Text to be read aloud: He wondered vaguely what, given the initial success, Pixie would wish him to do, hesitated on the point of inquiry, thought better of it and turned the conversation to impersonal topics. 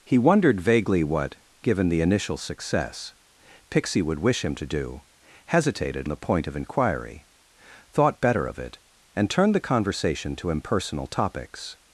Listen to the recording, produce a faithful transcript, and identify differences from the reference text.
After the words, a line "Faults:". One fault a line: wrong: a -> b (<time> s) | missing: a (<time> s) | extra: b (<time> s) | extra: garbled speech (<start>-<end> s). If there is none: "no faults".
He wondered vaguely what, given the initial success, Pixie would wish him to do, hesitated the point of inquiry, thought better of it and turned the conversation to impersonal topics.
Faults:
missing: on (6.1 s)